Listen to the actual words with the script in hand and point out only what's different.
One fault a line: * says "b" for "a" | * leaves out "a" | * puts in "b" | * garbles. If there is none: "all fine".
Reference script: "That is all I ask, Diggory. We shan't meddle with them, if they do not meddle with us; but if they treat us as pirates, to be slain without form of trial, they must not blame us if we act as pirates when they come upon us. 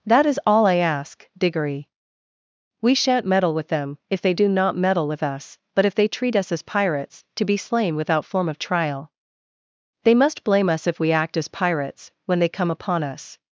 * leaves out "not"